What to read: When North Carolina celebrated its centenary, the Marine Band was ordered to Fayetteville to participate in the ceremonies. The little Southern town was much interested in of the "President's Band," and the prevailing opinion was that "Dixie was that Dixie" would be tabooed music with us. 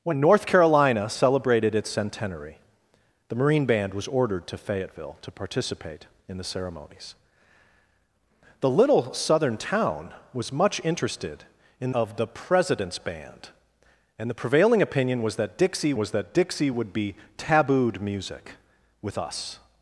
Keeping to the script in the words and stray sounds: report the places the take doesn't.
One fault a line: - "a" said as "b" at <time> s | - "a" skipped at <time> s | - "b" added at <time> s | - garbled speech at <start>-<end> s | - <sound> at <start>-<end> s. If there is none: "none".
none